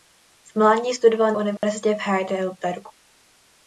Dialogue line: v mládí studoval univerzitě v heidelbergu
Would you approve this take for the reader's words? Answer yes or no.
yes